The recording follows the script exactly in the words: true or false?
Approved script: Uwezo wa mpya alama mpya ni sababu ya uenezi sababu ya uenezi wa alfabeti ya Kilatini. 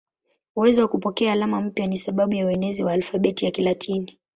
false